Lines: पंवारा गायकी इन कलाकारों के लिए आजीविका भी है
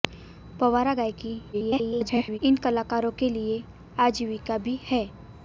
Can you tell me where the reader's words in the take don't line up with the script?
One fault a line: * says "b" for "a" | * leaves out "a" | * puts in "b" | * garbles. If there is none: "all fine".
* garbles